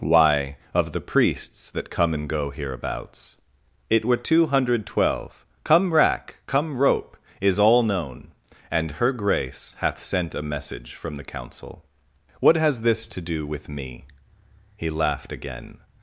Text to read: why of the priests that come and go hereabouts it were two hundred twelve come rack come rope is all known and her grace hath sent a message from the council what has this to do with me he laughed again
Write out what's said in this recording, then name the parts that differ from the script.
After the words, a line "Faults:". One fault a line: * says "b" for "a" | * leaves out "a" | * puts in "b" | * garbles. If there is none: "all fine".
why of the priests that come and go hereabouts it were two hundred twelve come rack come rope is all known and her grace hath sent a message from the council what has this to do with me he laughed again
Faults:
all fine